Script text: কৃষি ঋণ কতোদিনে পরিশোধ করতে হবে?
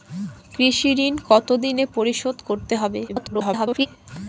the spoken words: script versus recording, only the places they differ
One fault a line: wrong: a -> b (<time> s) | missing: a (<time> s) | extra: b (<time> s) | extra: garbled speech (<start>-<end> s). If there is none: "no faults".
extra: garbled speech (3.1-3.9 s)